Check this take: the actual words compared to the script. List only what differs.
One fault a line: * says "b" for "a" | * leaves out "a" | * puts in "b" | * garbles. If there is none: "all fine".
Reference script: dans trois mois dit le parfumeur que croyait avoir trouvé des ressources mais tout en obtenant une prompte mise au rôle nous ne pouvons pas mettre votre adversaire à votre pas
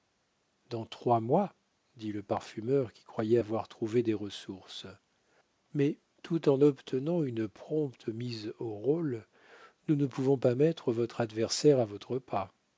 * says "qui" for "que"